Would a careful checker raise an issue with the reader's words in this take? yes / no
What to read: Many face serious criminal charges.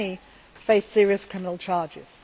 no